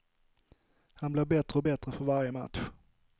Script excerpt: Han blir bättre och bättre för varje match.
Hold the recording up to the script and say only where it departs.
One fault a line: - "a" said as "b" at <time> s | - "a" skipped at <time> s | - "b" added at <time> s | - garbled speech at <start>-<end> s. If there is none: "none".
none